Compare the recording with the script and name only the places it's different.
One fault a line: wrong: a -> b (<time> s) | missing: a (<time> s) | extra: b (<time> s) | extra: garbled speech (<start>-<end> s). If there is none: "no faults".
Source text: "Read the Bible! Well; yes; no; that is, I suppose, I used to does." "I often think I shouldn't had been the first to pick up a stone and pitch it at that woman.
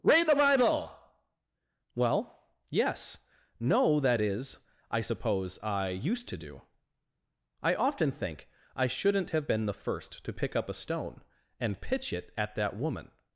wrong: does -> do (6.4 s)
wrong: had -> have (9.3 s)